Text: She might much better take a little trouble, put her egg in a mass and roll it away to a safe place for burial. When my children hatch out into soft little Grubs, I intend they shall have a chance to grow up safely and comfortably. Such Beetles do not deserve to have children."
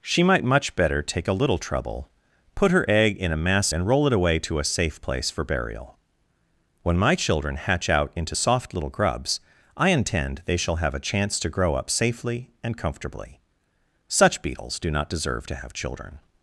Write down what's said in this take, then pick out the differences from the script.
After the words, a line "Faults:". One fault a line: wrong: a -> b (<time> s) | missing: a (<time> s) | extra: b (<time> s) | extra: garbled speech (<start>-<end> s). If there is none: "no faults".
She might much better take a little trouble, put her egg in a mass and roll it away to a safe place for burial. When my children hatch out into soft little Grubs, I intend they shall have a chance to grow up safely and comfortably. Such Beetles do not deserve to have children."
Faults:
no faults